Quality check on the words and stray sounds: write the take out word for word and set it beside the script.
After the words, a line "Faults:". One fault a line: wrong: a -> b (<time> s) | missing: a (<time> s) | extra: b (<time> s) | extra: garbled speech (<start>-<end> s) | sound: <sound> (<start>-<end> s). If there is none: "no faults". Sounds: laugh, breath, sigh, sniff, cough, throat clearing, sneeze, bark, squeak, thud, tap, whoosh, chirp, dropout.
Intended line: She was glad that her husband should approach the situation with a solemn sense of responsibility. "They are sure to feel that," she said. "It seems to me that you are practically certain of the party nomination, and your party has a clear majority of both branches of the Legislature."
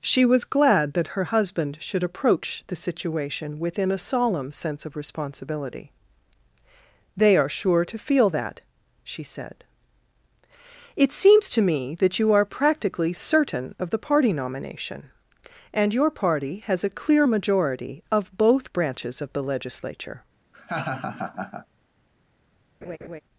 She was glad that her husband should approach the situation within a solemn sense of responsibility. "They are sure to feel that," she said. "It seems to me that you are practically certain of the party nomination, and your party has a clear majority of both branches of the Legislature."
Faults:
wrong: with -> within (3.6 s)
sound: laugh (20.5-21.7 s)
sound: laugh (22.8-23.2 s)